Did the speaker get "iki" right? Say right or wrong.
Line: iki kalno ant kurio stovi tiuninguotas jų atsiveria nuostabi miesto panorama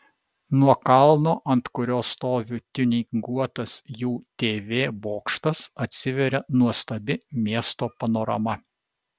wrong